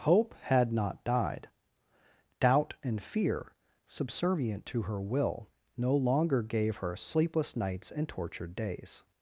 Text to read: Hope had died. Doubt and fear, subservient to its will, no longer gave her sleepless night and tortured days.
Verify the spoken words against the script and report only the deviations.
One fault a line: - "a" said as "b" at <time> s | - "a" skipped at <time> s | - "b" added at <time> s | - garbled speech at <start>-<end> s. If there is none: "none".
- "not" added at 0.7 s
- "its" said as "her" at 4.8 s
- "night" said as "nights" at 7.5 s